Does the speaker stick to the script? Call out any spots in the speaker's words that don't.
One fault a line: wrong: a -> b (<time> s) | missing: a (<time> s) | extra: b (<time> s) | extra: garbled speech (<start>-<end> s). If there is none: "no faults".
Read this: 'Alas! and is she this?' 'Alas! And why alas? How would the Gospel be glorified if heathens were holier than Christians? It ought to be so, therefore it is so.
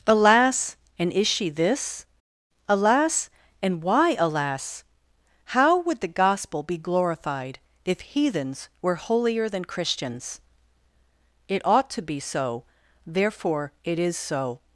no faults